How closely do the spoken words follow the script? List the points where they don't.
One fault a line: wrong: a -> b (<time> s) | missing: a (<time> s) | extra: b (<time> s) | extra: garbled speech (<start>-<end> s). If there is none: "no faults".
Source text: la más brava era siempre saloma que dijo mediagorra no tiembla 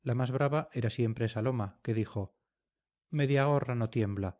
no faults